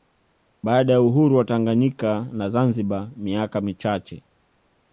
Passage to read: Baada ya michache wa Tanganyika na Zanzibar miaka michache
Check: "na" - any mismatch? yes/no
no